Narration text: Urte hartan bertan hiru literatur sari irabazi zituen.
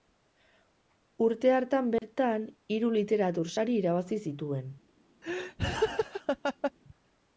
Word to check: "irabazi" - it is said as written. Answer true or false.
true